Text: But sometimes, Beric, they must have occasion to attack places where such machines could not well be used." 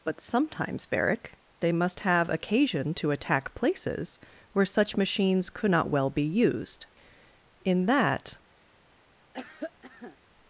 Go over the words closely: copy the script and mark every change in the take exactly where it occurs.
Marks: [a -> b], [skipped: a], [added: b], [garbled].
But sometimes, Beric, they must have occasion to attack places where such machines could not well be used." [added: In that]